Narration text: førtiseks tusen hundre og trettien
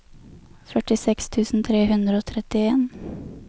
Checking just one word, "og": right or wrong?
right